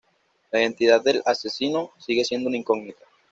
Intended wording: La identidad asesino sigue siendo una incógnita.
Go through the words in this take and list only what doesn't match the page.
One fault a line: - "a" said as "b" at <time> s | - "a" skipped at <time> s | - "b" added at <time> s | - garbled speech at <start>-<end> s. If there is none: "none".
- "del" added at 1.0 s